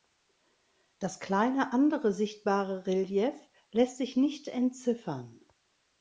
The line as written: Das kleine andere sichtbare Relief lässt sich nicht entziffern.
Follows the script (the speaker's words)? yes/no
yes